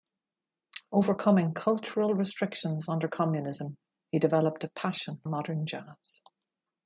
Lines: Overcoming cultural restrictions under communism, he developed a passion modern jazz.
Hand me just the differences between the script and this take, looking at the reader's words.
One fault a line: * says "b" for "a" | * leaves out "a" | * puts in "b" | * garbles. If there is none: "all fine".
all fine